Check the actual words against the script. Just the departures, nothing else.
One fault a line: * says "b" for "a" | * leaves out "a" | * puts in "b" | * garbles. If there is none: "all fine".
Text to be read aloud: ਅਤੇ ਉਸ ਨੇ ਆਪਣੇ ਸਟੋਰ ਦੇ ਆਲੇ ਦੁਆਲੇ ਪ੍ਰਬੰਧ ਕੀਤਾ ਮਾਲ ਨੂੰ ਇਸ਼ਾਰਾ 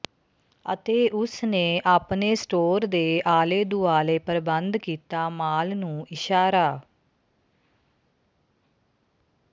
all fine